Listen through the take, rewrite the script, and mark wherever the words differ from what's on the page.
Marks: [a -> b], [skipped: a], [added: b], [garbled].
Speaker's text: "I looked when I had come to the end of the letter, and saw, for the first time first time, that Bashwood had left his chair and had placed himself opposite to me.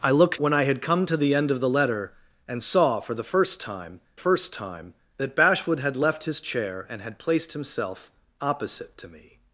"I looked when I had come to the end of the letter, and saw, for the first time first time, that Bashwood had left his chair and had placed himself opposite to me.